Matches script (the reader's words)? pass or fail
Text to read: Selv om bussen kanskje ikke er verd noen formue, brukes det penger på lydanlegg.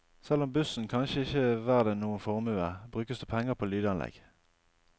pass